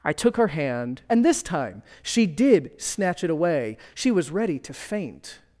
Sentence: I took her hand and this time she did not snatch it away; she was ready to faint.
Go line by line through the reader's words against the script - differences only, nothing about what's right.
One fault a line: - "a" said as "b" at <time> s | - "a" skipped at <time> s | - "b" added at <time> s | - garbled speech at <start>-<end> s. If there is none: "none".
- "not" skipped at 2.7 s